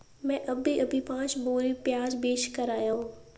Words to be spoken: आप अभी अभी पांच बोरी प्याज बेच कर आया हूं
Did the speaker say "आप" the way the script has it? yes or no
no